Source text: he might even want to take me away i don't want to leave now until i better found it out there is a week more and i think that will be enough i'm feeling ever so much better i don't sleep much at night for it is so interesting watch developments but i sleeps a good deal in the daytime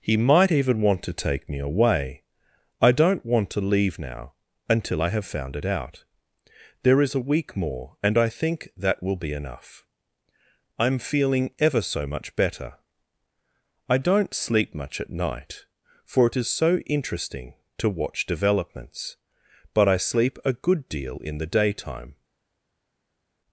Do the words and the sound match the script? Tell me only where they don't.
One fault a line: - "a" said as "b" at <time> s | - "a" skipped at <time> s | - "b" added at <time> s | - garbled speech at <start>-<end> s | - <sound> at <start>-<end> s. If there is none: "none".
- "better" said as "have" at 5.1 s
- "to" added at 17.8 s
- "sleeps" said as "sleep" at 20.0 s